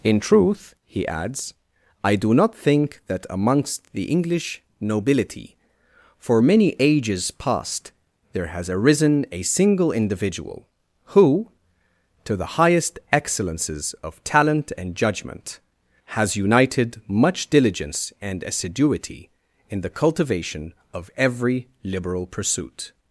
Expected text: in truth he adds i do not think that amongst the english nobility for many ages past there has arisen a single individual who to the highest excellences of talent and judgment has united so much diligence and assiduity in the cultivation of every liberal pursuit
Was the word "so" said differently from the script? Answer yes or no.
yes